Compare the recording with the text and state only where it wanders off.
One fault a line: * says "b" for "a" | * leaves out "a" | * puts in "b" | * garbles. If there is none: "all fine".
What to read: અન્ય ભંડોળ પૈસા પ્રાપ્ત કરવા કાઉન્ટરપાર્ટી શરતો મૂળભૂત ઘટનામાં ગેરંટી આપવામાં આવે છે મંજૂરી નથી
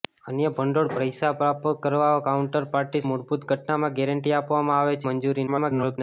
* leaves out "શરતો"
* leaves out "છે"
* garbles